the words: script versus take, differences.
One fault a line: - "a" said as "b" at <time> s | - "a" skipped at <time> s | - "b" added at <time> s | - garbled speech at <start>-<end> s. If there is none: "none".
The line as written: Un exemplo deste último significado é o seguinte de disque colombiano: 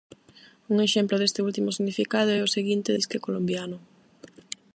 - "de" skipped at 2.9 s